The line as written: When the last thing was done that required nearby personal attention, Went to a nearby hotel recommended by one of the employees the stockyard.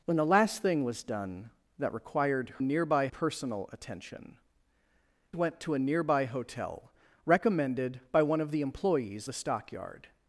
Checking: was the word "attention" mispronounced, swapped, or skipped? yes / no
no